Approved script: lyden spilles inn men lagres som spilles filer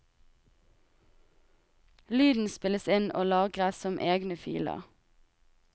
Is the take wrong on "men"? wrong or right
wrong